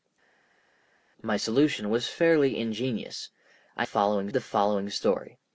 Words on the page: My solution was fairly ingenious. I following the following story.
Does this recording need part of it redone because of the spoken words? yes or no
no